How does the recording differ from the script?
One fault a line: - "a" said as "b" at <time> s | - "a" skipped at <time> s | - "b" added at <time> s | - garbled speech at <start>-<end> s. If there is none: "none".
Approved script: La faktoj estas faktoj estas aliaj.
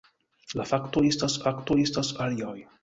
none